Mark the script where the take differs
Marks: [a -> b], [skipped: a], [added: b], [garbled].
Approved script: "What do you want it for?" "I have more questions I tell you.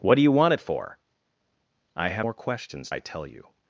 "What do you want it for?" "I have more questions I tell you.